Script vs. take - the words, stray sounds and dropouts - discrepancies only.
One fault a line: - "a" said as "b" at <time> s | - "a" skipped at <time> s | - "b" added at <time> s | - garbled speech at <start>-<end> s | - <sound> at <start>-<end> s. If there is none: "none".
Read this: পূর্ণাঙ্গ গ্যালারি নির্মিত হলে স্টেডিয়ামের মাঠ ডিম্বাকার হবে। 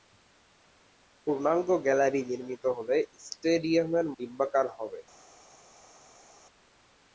- "মাঠ" skipped at 4.1 s